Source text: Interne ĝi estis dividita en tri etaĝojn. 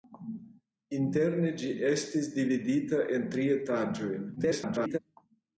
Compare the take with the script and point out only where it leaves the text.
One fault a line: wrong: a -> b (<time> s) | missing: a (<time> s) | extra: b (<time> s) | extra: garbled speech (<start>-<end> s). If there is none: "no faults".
extra: garbled speech (4.4-5.0 s)